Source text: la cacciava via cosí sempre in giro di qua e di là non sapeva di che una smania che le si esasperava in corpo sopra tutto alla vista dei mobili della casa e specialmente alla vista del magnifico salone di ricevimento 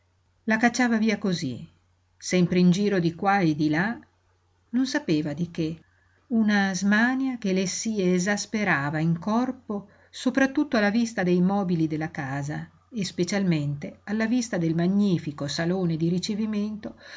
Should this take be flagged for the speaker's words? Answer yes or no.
no